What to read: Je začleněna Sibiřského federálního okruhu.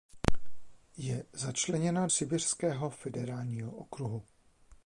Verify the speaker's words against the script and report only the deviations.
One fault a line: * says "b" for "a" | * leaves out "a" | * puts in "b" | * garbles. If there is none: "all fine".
all fine